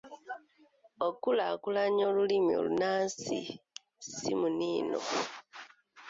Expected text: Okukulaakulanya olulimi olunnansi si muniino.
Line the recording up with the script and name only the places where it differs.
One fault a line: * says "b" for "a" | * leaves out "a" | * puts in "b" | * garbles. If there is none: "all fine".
all fine